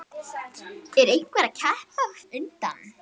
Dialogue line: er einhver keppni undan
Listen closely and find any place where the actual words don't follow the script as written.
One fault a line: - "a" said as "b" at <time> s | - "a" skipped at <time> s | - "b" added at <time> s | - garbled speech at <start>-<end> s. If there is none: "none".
none